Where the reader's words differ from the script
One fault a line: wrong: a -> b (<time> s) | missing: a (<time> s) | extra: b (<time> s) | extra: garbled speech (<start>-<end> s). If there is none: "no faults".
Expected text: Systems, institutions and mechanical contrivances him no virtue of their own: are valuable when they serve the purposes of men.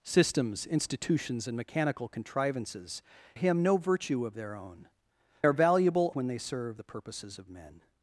no faults